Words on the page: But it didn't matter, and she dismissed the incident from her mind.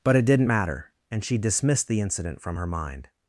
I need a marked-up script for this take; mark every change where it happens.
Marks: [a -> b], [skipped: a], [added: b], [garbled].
But it didn't matter, and she dismissed the incident from her mind.